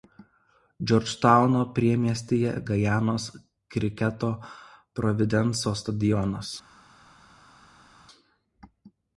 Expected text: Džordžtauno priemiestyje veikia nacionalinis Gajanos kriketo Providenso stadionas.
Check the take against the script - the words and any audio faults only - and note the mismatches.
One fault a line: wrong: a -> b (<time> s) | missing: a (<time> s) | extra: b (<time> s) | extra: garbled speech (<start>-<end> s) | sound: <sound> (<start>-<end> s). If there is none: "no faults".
missing: veikia nacionalinis (2.5 s)